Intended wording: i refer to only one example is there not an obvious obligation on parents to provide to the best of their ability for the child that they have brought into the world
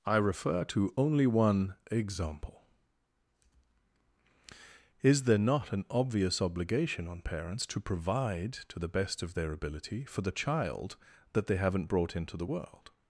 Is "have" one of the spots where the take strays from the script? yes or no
yes